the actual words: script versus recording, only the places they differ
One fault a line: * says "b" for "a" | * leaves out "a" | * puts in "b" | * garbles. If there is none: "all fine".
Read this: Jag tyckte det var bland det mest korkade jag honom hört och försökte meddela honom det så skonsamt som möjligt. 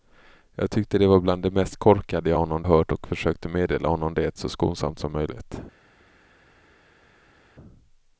all fine